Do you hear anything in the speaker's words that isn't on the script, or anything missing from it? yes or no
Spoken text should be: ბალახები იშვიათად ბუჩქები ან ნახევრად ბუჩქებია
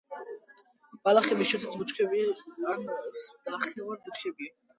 no